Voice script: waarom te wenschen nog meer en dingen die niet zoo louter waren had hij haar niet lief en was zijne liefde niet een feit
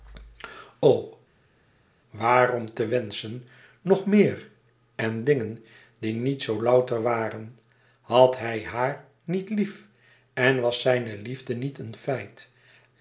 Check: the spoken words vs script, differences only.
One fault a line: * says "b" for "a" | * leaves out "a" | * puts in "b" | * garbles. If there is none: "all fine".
all fine